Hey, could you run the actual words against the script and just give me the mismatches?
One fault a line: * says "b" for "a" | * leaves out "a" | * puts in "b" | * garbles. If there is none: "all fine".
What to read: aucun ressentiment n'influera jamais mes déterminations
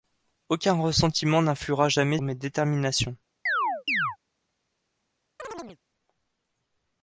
all fine